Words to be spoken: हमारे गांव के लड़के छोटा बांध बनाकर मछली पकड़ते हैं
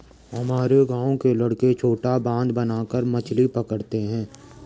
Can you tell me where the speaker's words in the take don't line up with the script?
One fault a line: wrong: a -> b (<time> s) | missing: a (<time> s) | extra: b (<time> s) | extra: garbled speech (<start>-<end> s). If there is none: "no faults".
no faults